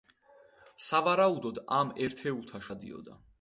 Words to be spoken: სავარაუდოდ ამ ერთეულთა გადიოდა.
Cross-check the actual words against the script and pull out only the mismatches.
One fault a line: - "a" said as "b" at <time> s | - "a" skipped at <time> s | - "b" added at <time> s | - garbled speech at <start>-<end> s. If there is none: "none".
none